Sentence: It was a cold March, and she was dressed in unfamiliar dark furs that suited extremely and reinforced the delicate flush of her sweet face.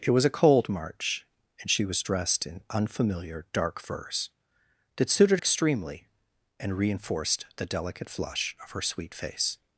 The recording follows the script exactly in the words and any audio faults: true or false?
true